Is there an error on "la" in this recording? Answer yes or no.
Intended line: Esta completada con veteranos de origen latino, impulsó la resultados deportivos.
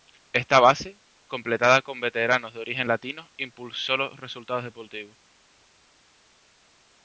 yes